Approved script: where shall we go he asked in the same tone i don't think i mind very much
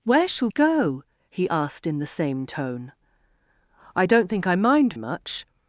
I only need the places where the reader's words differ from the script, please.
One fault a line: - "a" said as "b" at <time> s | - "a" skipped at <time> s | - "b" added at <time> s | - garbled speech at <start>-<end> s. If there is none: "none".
- "we" skipped at 0.5 s
- "very" skipped at 4.9 s